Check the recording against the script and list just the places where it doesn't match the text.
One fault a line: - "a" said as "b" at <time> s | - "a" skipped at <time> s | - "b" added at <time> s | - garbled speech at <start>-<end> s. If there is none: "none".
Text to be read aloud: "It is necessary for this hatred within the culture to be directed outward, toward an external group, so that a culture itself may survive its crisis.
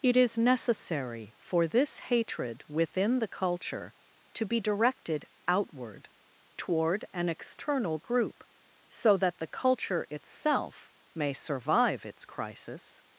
- "a" said as "the" at 9.4 s